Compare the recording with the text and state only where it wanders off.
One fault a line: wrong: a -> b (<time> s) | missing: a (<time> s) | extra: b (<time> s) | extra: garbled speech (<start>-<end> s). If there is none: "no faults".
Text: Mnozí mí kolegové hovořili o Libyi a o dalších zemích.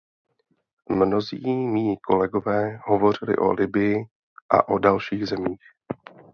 no faults